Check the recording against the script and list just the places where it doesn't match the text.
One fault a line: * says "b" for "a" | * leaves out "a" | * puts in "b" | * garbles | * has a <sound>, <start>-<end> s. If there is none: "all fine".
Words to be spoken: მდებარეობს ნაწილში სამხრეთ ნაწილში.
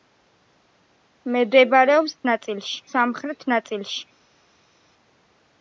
all fine